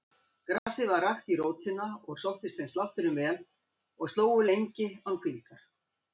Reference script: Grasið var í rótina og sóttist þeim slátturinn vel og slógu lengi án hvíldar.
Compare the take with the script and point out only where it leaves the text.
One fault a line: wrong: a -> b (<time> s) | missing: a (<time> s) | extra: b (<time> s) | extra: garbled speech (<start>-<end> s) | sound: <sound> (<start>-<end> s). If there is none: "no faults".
sound: dropout (0.6-0.7 s)
extra: rakt (1.1 s)